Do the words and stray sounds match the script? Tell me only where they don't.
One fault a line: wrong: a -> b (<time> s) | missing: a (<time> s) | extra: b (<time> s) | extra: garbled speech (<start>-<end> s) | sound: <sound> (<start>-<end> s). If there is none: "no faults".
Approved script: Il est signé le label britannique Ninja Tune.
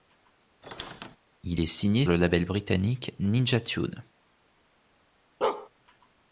sound: squeak (0.6-1.2 s)
sound: bark (5.4-5.7 s)